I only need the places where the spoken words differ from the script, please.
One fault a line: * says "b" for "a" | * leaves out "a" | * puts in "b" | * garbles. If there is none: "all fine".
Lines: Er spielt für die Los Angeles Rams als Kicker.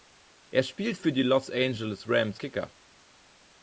* leaves out "als"